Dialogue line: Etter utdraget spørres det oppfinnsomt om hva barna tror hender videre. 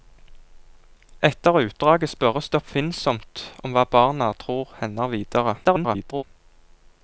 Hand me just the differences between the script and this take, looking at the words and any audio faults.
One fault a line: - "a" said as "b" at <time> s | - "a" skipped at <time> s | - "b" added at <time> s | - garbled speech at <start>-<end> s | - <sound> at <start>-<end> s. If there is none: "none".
- garbled speech at 5.6-6.2 s